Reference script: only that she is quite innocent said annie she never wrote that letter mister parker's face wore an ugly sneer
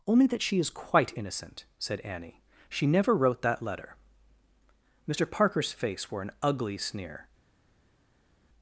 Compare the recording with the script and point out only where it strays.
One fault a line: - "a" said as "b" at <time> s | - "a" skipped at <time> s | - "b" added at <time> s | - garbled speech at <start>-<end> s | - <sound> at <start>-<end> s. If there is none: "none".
none